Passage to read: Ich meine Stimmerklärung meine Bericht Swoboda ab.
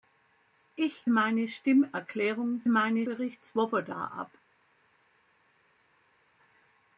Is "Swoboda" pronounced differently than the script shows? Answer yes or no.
no